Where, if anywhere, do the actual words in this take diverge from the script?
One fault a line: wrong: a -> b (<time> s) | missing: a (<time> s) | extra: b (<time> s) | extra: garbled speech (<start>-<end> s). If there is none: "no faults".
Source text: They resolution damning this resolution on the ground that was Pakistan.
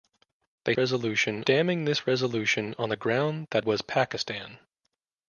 no faults